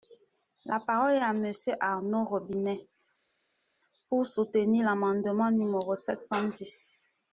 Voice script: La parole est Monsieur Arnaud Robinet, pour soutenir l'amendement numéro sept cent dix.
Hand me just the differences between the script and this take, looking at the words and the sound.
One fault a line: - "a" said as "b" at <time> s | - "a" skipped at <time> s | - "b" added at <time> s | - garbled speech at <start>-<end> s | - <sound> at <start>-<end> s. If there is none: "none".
- "à" added at 1.2 s